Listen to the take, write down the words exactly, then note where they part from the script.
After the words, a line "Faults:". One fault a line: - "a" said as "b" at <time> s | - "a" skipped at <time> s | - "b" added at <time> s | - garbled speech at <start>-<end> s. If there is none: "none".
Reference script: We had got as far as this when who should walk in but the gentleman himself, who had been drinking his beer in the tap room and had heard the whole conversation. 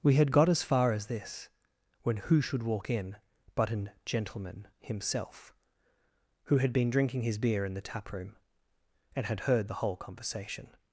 We had got as far as this when who should walk in but an gentleman himself, who had been drinking his beer in the tap room and had heard the whole conversation.
Faults:
- "the" said as "an" at 3.7 s